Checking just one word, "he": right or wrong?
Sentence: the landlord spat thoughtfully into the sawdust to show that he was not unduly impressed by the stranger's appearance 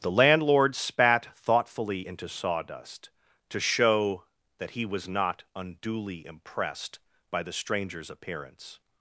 right